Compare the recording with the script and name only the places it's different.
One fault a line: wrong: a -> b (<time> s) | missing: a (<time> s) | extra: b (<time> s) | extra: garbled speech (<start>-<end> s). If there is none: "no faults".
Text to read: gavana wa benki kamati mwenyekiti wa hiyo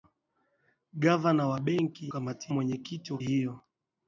no faults